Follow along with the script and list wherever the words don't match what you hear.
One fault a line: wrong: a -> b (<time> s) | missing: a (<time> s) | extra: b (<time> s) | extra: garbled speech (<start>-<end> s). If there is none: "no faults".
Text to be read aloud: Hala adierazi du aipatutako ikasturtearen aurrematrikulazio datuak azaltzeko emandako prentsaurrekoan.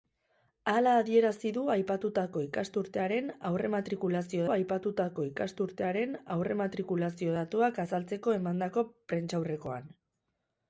extra: aipatutako ikasturtearen aurrematrikulazio (4.5 s)